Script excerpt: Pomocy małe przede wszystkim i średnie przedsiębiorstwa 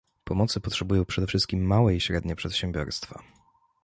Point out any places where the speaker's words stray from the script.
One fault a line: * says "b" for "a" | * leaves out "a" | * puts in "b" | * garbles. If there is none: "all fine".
* says "potrzebują" for "małe"
* puts in "małe"